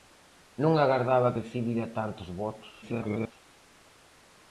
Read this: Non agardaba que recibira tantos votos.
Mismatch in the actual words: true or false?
true